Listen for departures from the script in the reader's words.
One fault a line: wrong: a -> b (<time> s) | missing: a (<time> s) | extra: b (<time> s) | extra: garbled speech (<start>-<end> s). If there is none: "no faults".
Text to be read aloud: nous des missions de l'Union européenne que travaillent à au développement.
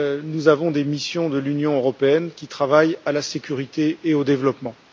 extra: avons (0.5 s)
wrong: que -> qui (2.4 s)
extra: la sécurité et (3.1 s)